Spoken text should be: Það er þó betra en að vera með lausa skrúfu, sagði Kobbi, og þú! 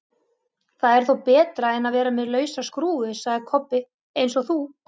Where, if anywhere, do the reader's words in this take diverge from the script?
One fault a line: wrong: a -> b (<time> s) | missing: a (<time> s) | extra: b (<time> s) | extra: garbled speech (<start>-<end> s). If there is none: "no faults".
extra: eins (4.3 s)